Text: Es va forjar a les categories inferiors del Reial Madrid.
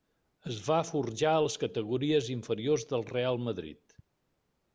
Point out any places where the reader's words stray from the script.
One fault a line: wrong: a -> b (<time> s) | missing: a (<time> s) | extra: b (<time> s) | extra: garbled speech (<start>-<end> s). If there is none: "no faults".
no faults